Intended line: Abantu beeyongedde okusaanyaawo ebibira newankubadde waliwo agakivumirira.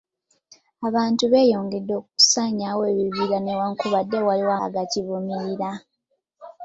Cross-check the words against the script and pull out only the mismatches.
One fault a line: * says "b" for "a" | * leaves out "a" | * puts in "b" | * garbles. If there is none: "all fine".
all fine